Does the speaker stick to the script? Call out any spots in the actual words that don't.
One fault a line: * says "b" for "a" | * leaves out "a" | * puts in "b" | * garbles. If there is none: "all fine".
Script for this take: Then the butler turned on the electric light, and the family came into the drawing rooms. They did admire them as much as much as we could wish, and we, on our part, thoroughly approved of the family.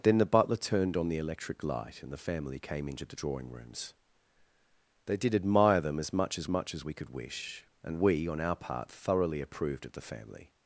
all fine